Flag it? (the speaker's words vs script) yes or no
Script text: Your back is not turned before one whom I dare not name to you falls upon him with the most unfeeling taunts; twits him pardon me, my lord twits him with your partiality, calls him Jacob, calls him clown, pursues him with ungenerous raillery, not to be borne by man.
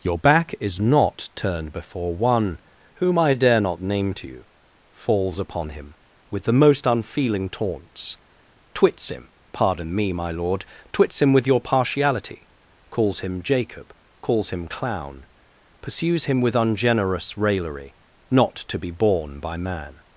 no